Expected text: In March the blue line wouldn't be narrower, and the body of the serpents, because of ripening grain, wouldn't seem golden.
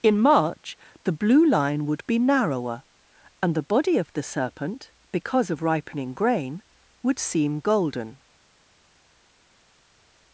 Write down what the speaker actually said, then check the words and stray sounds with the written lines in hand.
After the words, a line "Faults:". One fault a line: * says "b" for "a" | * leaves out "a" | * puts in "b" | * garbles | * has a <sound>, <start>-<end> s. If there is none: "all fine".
In March the blue line would be narrower, and the body of the serpent, because of ripening grain, would seem golden.
Faults:
* says "would" for "wouldn't"
* says "serpent" for "serpents"
* says "would" for "wouldn't"